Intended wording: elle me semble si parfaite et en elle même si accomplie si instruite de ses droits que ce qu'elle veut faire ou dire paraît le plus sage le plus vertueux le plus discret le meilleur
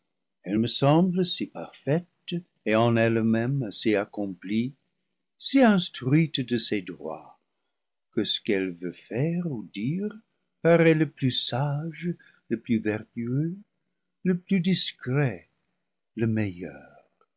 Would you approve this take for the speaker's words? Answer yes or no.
yes